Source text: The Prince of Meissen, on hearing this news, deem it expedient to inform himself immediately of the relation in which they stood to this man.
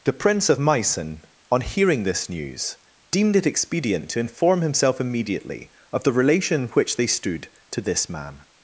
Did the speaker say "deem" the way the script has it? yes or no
no